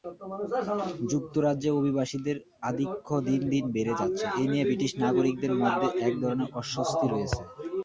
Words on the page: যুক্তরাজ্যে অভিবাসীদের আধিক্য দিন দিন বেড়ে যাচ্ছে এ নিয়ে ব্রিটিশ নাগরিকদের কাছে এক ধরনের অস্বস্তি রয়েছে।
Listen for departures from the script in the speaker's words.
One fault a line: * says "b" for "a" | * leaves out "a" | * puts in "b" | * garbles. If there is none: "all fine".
* says "মধ্যে" for "কাছে"